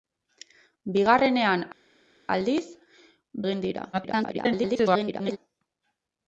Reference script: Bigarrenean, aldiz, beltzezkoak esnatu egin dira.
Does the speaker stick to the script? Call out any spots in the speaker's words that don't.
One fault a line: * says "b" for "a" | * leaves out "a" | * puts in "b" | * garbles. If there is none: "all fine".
* leaves out "beltzezkoak esnatu"
* garbles